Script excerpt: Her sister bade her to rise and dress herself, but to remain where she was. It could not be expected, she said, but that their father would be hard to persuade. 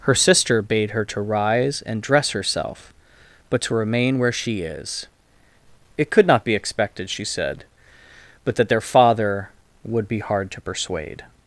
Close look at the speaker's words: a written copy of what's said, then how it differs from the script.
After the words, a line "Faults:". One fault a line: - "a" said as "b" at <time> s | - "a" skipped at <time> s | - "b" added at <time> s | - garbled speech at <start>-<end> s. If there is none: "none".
Her sister bade her to rise and dress herself, but to remain where she is. It could not be expected, she said, but that their father would be hard to persuade.
Faults:
- "was" said as "is" at 4.6 s